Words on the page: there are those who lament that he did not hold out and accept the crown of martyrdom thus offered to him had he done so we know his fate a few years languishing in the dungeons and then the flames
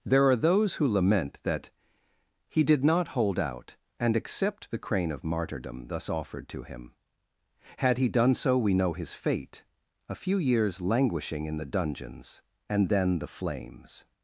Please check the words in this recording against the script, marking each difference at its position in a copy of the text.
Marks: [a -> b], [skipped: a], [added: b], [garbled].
there are those who lament that he did not hold out and accept the [crown -> crane] of martyrdom thus offered to him had he done so we know his fate a few years languishing in the dungeons and then the flames